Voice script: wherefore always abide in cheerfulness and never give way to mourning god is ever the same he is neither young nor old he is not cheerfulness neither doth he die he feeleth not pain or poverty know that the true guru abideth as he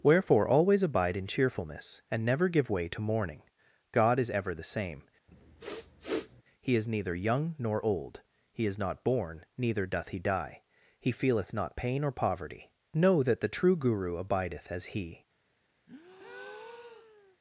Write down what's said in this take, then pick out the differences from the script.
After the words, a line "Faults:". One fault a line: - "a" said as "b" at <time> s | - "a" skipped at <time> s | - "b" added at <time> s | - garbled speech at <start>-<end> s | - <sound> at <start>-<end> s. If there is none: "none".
wherefore always abide in cheerfulness and never give way to mourning god is ever the same he is neither young nor old he is not born neither doth he die he feeleth not pain or poverty know that the true guru abideth as he
Faults:
- sniff at 5.3-6.4 s
- "cheerfulness" said as "born" at 9.0 s
- breath at 15.9-17.4 s